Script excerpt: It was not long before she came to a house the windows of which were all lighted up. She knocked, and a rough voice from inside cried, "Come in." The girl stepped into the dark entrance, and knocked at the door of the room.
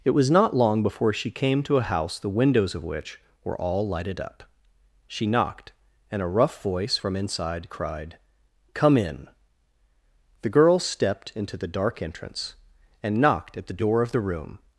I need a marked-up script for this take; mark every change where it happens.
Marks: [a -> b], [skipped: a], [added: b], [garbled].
It was not long before she came to a house the windows of which were all lighted up. She knocked, and a rough voice from inside cried, "Come in." The girl stepped into the dark entrance, and knocked at the door of the room.